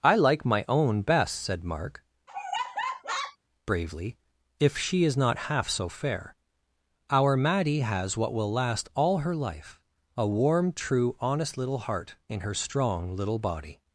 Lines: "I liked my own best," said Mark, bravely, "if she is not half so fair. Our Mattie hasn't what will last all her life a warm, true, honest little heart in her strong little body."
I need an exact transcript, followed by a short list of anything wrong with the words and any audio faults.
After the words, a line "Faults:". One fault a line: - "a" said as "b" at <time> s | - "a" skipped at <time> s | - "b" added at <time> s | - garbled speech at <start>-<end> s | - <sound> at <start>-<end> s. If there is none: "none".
"I like my own best," said Mark, bravely, "if she is not half so fair. Our Mattie has what will last all her life a warm, true, honest little heart in her strong little body."
Faults:
- "liked" said as "like" at 0.1 s
- laugh at 2.3-3.4 s
- "hasn't" said as "has" at 7.8 s